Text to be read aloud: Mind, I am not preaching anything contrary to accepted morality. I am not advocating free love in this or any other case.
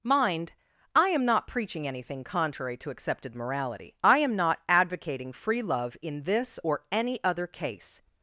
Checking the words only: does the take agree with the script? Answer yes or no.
yes